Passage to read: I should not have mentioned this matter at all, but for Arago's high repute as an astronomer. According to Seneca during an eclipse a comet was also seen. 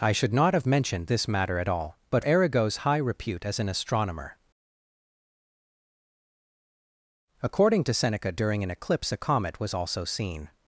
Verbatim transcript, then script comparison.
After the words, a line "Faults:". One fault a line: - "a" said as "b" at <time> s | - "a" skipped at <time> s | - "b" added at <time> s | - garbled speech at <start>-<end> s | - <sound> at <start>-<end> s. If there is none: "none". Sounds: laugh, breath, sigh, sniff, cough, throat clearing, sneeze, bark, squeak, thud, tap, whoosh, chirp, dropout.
I should not have mentioned this matter at all, but Arago's high repute as an astronomer. According to Seneca during an eclipse a comet was also seen.
Faults:
- "for" skipped at 2.2 s